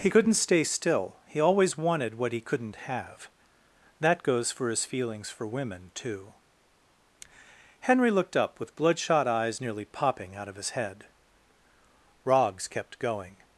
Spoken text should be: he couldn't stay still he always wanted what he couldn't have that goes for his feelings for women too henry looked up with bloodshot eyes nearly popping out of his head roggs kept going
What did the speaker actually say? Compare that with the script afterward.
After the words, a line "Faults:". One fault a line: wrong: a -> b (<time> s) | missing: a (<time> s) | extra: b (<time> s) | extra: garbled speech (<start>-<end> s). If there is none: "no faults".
he couldn't stay still he always wanted what he couldn't have that goes for his feelings for women too henry looked up with bloodshot eyes nearly popping out of his head roggs kept going
Faults:
no faults